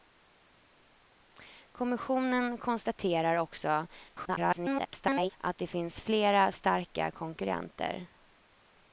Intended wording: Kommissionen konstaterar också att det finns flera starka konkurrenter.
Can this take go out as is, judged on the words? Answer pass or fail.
fail